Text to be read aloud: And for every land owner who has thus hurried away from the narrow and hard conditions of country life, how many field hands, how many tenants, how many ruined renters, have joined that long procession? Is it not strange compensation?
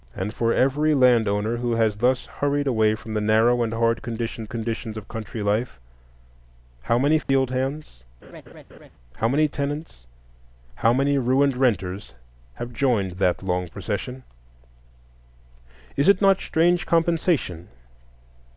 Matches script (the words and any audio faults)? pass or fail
fail